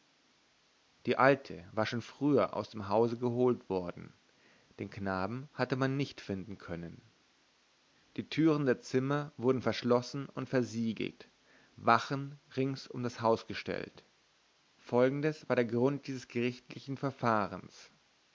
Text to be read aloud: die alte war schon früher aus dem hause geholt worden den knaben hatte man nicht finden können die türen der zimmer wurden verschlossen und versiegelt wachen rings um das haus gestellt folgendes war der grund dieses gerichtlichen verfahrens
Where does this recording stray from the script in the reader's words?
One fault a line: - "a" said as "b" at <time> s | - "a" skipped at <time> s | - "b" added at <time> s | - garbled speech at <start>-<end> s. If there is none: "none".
none